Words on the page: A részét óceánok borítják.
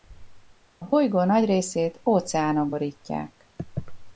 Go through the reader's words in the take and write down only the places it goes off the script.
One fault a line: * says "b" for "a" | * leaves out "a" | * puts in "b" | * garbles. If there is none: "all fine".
* puts in "bolygó nagy"